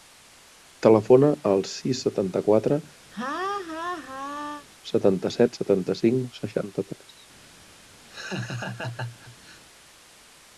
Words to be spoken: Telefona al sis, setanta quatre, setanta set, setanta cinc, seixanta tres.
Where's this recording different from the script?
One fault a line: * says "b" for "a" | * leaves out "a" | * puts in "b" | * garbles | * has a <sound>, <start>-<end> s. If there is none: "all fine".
* has a laugh, 3.1-4.7 s
* has a laugh, 8.1-9.6 s